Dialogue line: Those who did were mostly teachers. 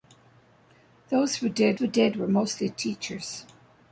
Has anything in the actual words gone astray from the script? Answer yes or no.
yes